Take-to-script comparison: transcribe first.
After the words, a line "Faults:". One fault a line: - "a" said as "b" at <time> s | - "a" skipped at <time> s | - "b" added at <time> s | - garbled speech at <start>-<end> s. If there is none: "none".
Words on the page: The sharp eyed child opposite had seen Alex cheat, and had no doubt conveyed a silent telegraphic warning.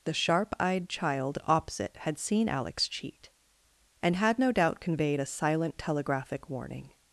The sharp eyed child opposite had seen Alex cheat, and had no doubt conveyed a silent telegraphic warning.
Faults:
none